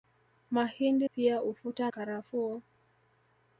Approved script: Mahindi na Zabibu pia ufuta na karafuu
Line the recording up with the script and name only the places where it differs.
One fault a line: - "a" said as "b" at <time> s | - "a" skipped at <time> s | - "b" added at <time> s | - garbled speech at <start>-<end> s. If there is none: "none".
- "na Zabibu" skipped at 1.1 s
- "na" skipped at 1.9 s